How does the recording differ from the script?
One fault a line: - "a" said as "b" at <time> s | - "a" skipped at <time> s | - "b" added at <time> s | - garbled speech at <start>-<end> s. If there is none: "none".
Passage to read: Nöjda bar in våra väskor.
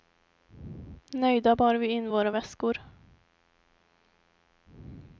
- "vi" added at 1.7 s